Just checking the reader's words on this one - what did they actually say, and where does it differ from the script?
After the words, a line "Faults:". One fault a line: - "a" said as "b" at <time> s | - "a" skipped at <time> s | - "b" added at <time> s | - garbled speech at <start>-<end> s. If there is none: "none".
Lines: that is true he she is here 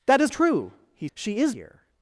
that is true he she is here
Faults:
none